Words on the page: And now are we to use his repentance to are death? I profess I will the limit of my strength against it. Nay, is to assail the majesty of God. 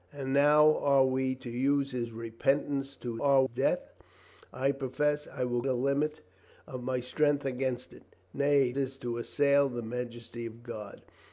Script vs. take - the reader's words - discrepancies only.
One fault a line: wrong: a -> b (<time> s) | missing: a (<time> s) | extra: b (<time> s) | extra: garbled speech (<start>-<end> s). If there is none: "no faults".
no faults